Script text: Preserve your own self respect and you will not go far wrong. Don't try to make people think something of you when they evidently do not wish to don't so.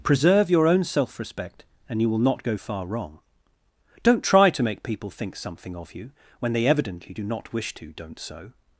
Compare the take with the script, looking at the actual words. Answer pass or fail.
pass